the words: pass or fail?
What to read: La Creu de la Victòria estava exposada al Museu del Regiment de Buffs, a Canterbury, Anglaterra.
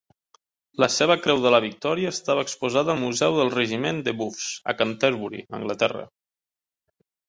fail